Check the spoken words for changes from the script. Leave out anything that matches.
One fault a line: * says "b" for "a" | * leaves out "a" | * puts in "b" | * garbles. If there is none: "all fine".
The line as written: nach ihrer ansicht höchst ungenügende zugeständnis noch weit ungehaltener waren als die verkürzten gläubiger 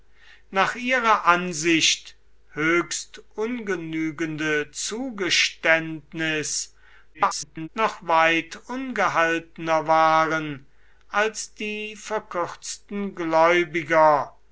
* garbles